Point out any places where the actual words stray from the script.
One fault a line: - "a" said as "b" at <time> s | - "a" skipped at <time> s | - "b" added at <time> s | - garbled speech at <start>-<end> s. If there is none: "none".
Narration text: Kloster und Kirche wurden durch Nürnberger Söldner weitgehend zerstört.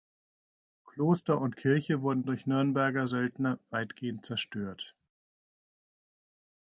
none